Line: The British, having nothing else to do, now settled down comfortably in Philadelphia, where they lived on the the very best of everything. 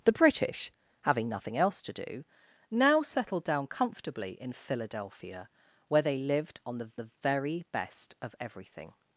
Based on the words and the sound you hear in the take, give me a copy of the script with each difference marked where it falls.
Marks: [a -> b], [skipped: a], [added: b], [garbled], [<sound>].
The British, having nothing else to do, now settled down comfortably in Philadelphia, where they lived on the the very best of everything.